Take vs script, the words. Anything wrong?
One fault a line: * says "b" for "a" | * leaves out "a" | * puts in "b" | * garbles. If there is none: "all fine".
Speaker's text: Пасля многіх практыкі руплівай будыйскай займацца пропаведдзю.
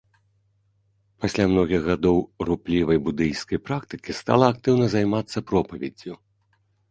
* says "гадоў" for "практыкі"
* puts in "практыкі стала актыўна"